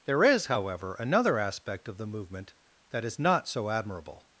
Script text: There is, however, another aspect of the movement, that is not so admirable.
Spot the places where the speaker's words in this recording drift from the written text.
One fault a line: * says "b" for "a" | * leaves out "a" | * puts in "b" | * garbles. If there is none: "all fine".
all fine